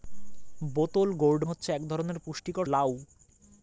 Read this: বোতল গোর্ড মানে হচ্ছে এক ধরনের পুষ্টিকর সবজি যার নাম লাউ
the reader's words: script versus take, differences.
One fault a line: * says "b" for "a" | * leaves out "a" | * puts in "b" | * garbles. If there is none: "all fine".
* leaves out "মানে"
* leaves out "সবজি যার নাম"